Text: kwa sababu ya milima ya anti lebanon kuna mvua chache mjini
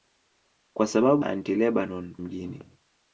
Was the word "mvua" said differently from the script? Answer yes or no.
yes